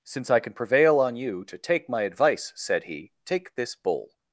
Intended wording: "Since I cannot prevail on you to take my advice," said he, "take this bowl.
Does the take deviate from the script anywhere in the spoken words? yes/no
yes